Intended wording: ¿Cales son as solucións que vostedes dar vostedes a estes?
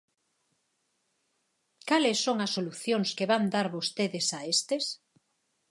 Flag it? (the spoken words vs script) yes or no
yes